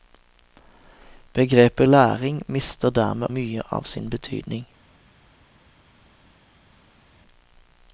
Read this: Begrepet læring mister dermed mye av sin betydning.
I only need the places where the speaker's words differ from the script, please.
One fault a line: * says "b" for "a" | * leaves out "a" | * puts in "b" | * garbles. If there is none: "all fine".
all fine